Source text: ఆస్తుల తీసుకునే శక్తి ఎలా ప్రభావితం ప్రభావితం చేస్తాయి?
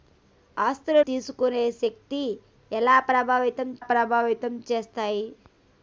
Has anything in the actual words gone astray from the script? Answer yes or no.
no